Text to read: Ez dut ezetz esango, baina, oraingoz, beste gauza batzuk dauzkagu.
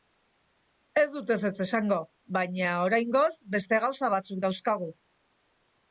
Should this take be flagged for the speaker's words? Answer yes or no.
no